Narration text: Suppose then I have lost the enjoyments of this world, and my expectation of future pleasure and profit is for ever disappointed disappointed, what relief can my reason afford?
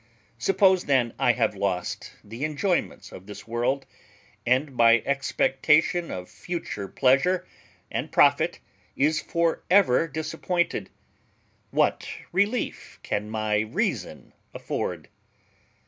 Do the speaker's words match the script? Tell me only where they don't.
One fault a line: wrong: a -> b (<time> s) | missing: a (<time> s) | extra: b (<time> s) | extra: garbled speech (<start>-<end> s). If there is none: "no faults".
missing: disappointed (10.9 s)